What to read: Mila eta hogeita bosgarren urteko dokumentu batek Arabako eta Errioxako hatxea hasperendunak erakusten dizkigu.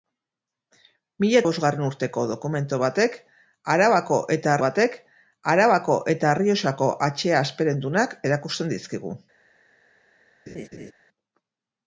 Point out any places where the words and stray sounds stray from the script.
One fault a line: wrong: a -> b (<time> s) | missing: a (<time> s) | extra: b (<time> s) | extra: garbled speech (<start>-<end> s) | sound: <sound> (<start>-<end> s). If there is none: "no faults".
missing: eta hogeita (1.4 s)
extra: batek Arabako eta (4.6 s)
sound: laugh (10.5-10.9 s)